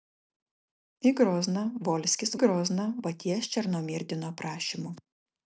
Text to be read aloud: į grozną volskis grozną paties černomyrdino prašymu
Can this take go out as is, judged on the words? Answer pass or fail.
pass